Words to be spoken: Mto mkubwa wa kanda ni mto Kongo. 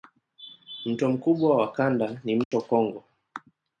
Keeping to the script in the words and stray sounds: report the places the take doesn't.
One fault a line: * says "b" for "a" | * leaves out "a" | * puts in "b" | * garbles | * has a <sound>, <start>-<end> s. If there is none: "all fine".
* has a dropout, 2.4-2.5 s